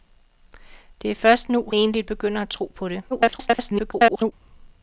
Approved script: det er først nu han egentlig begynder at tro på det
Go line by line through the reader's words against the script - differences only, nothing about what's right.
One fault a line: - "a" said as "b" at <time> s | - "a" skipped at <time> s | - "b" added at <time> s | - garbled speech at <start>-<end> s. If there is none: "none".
- "han" skipped at 1.7 s
- garbled speech at 3.1-4.3 s